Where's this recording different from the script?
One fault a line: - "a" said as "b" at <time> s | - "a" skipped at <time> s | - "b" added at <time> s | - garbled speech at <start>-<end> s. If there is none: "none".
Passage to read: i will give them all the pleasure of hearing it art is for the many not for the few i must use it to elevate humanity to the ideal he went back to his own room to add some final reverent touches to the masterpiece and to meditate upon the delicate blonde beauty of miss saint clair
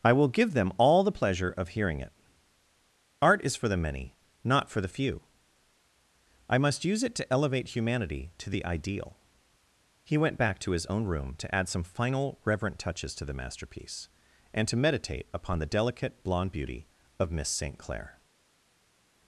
none